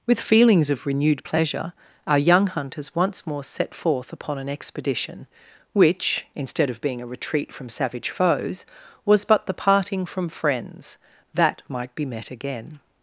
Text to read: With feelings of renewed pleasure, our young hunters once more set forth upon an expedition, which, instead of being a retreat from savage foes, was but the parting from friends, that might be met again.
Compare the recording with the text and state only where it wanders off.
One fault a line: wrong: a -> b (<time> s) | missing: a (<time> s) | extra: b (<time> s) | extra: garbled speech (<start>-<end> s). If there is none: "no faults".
no faults